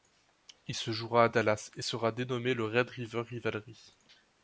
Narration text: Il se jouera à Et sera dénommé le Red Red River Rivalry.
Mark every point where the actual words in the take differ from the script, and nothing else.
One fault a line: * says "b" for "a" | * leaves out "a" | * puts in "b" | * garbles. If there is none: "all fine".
* puts in "Dallas"
* leaves out "Red"